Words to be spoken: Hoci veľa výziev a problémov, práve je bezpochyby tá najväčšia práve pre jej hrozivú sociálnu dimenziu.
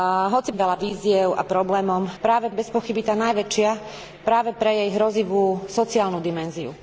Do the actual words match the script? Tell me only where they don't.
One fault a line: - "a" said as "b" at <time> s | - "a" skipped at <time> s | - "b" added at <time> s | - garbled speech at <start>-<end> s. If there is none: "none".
none